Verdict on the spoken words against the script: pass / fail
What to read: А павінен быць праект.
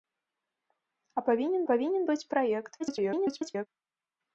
fail